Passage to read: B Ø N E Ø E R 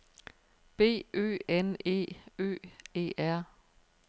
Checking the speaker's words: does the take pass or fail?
pass